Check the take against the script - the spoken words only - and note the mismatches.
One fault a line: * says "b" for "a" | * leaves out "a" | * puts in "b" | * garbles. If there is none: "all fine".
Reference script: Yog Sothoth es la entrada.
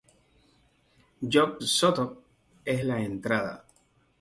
all fine